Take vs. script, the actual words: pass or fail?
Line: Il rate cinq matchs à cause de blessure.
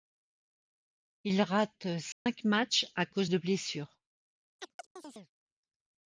pass